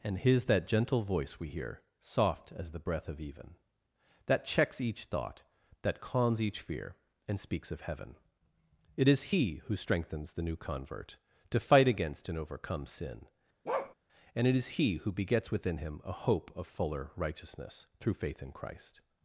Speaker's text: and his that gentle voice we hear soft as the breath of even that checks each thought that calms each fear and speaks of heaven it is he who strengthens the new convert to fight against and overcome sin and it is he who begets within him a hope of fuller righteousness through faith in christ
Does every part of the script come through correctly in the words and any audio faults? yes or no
no